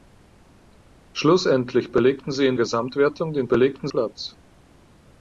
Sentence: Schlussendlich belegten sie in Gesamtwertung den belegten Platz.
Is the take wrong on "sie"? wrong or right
right